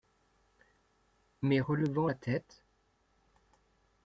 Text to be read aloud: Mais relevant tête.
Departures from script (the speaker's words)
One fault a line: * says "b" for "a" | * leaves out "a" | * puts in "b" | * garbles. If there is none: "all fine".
* puts in "la"